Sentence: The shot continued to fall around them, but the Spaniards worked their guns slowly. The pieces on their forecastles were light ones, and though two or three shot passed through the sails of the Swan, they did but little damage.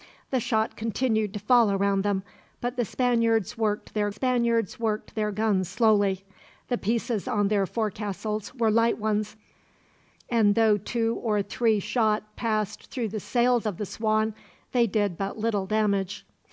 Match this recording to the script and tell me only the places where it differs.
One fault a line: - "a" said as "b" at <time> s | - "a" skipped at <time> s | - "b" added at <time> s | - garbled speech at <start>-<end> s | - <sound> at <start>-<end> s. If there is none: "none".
- "Spaniards worked their" added at 4.1 s